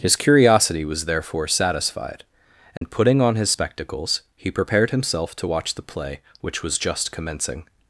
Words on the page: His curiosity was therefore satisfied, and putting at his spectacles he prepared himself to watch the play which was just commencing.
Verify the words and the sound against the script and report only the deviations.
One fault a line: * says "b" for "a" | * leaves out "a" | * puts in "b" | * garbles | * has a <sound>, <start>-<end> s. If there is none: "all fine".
* has a dropout, 2.8-2.8 s
* says "on" for "at"